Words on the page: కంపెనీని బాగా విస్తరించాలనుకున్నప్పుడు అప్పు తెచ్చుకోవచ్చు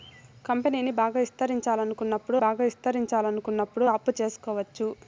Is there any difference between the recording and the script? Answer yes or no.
yes